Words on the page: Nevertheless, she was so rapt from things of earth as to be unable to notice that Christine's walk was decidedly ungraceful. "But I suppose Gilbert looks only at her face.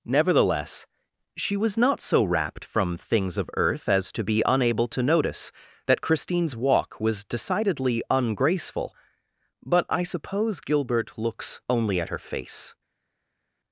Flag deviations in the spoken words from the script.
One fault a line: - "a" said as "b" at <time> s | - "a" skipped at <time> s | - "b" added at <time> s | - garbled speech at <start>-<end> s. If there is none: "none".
- "not" added at 1.8 s